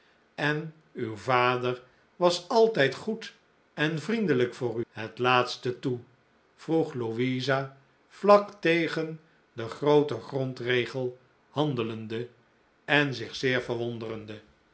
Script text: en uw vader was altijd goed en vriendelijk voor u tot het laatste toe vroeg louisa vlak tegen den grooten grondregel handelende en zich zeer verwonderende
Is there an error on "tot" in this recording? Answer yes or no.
yes